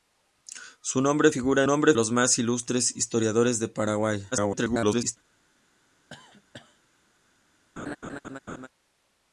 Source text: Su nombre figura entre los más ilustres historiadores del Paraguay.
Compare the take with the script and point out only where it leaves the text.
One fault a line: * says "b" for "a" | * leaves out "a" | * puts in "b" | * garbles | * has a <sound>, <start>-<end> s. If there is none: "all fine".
* says "nombre" for "entre"
* garbles
* has a cough, 6.1-6.8 s
* has a laugh, 7.8-8.7 s